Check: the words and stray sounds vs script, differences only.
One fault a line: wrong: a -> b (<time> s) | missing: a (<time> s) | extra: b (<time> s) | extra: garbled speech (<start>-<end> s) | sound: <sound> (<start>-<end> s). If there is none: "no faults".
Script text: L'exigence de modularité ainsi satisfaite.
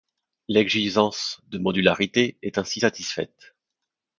extra: est (2.4 s)